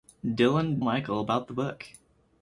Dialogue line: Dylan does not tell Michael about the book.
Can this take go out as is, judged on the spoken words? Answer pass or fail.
fail